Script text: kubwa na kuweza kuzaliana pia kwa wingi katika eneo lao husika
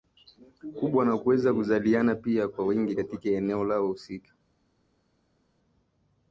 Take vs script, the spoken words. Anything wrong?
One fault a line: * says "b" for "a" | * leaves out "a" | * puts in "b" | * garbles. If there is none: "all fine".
all fine